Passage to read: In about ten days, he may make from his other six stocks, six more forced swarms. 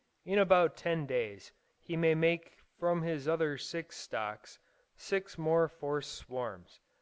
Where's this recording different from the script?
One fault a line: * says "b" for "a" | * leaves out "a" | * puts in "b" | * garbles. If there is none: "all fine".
all fine